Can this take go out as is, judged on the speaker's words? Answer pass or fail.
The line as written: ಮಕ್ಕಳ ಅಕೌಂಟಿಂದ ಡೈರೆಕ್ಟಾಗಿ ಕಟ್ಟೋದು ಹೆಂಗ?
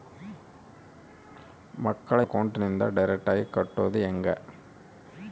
pass